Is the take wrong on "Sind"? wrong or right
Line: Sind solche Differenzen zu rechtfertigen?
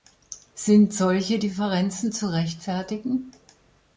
right